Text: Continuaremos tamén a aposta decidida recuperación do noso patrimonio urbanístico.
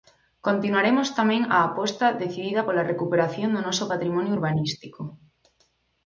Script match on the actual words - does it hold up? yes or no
no